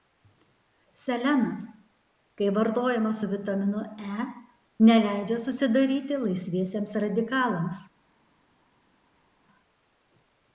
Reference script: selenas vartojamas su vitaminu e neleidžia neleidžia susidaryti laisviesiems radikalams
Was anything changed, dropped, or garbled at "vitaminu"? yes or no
no